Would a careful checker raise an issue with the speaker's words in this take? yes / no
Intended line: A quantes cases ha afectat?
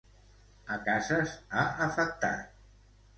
yes